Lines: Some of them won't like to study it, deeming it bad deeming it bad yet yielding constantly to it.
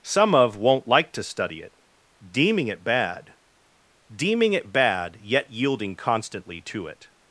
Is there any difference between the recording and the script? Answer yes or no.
yes